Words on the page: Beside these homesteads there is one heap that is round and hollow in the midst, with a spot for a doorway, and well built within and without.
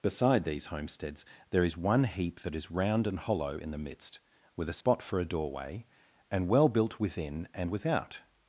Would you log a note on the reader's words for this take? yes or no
no